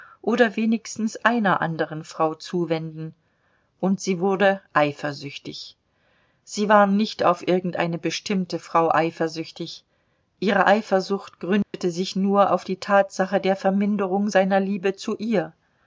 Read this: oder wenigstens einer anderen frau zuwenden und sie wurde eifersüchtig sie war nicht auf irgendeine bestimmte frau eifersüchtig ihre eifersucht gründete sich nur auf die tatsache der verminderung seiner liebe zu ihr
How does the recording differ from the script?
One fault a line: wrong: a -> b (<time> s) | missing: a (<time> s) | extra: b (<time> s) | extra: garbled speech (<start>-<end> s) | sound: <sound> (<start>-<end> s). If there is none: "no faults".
sound: dropout (11.6-11.7 s)